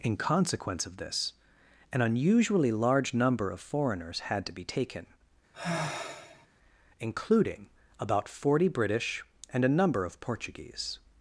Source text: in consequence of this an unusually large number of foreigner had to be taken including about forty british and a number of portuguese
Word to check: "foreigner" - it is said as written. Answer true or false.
false